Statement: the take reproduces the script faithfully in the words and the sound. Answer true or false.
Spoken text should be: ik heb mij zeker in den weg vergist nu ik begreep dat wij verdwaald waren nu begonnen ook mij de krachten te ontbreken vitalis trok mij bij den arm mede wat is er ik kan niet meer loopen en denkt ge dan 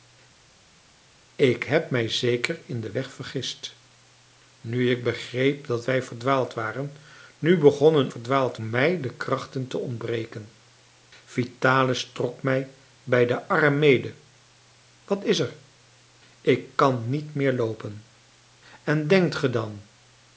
false